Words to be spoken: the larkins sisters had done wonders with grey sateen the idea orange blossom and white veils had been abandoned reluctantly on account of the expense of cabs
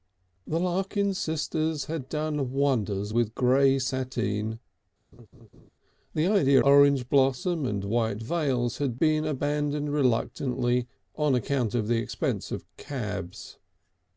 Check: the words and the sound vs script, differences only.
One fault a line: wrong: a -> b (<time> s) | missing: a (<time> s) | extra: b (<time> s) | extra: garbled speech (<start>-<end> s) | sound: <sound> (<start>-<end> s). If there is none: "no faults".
sound: laugh (5.1-5.7 s)